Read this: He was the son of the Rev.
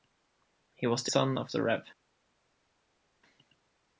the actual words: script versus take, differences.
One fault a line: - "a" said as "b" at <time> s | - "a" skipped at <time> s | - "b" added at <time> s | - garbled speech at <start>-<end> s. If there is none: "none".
none